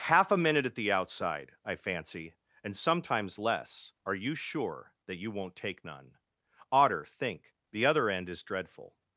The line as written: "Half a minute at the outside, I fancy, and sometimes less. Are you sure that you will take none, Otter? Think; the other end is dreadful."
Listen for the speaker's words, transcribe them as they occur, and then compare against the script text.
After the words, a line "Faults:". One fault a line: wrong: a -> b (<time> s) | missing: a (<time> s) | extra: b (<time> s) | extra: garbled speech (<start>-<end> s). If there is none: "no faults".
"Half a minute at the outside, I fancy, and sometimes less. Are you sure that you won't take none, Otter? Think; the other end is dreadful."
Faults:
wrong: will -> won't (5.3 s)